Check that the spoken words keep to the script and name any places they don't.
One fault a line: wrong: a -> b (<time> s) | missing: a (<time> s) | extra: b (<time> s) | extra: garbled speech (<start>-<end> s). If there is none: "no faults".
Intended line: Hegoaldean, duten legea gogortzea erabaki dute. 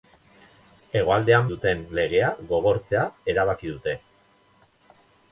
no faults